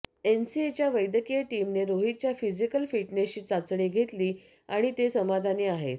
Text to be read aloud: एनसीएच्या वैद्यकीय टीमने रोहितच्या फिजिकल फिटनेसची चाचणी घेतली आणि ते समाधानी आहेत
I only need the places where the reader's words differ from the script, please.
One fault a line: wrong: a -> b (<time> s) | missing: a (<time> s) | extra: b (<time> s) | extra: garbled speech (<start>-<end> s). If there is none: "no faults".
no faults